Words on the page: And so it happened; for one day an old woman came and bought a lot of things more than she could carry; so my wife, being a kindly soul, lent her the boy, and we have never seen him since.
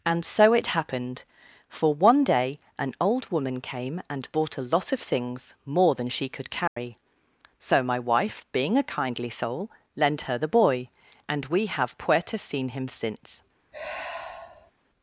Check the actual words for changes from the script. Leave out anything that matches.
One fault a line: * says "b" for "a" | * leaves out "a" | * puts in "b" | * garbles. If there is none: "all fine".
* says "puerta" for "never"